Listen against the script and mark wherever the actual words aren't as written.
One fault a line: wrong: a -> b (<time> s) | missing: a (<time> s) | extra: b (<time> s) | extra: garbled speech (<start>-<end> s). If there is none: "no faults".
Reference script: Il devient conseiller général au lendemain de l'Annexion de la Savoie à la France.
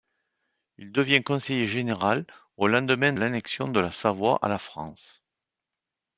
missing: de (3.1 s)